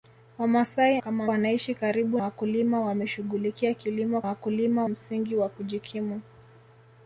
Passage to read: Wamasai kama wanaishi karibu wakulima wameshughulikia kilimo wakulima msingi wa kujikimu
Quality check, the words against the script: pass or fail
pass